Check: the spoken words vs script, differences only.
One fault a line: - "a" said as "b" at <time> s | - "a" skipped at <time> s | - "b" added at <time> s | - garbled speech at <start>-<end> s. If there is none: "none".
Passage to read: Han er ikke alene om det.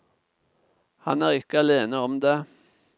none